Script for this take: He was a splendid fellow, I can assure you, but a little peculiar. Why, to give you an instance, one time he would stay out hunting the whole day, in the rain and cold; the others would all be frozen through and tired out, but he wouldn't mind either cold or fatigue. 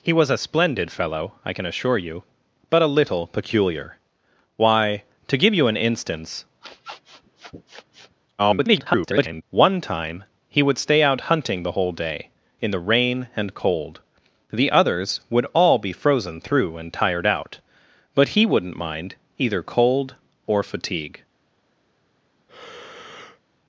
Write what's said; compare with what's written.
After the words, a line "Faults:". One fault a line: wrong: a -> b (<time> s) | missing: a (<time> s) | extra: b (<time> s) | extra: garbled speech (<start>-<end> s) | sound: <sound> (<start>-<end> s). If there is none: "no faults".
He was a splendid fellow, I can assure you, but a little peculiar. Why, to give you an instance, [garbled] one time he would stay out hunting the whole day, in the rain and cold; the others would all be frozen through and tired out, but he wouldn't mind either cold or fatigue.
Faults:
sound: sniff (6.6-8.2 s)
extra: garbled speech (8.4-9.4 s)
sound: breath (22.5-23.4 s)